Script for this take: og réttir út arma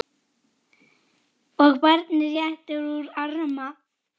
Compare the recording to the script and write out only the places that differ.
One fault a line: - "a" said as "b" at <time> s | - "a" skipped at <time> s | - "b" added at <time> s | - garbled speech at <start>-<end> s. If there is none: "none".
- "barnið" added at 1.8 s